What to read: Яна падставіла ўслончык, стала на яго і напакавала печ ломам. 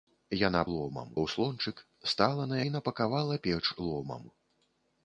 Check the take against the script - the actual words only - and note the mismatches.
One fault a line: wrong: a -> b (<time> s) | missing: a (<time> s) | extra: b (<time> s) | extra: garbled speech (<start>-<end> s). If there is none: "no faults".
wrong: падставіла -> ломам (0.7 s)
missing: яго (2.6 s)